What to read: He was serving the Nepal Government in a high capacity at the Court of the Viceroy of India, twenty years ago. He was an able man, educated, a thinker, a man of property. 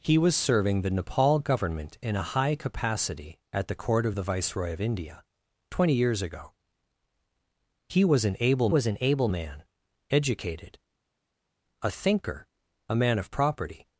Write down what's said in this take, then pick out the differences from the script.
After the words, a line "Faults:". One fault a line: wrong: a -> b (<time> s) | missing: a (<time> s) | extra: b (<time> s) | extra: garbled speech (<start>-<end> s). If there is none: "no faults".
He was serving the Nepal Government in a high capacity at the Court of the Viceroy of India, twenty years ago. He was an able was an able man, educated, a thinker, a man of property.
Faults:
extra: was an able (8.7 s)